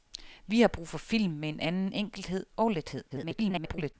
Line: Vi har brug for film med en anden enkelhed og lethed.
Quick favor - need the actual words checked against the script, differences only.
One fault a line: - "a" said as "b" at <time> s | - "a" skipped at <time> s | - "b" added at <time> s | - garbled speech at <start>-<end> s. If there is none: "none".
- garbled speech at 3.1-3.9 s